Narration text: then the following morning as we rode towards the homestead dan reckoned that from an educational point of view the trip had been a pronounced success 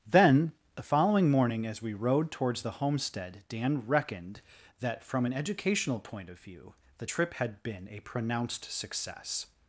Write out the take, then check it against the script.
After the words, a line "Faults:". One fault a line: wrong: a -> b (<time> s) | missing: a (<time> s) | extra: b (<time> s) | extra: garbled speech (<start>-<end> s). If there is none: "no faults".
then the following morning as we rode towards the homestead dan reckoned that from an educational point of view the trip had been a pronounced success
Faults:
no faults